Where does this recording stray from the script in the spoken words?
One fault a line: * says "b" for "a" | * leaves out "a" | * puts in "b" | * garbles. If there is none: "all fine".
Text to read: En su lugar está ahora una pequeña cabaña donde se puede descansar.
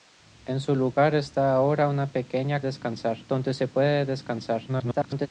* says "descansar" for "cabaña"
* garbles